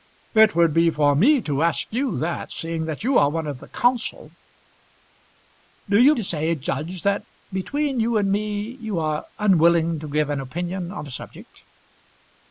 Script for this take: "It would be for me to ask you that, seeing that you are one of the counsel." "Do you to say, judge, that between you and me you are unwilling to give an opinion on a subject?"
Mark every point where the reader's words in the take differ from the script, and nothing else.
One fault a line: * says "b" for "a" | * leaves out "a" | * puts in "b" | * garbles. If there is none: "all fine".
all fine